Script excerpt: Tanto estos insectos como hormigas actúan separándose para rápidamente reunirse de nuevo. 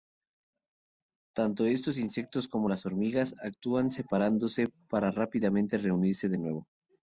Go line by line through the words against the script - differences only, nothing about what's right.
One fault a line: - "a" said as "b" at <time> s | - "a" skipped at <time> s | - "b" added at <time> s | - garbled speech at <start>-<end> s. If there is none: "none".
- "las" added at 2.7 s